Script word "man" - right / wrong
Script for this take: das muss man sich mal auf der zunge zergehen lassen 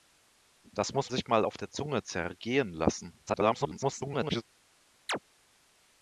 wrong